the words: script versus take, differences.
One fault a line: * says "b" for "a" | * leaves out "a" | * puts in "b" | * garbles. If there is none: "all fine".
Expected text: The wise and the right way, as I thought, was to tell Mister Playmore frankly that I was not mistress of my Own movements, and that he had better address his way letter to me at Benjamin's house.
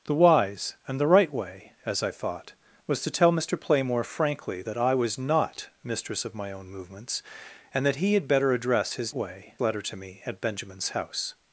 all fine